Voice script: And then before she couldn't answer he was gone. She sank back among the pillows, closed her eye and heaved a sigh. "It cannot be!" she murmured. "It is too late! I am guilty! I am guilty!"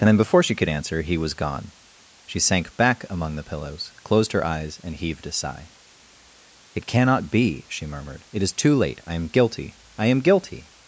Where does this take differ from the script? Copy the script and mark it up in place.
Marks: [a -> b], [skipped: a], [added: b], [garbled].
And then before she [couldn't -> could] answer he was gone. She sank back among the pillows, closed her [eye -> eyes] and heaved a sigh. "It cannot be!" she murmured. "It is too late! I am guilty! I am guilty!"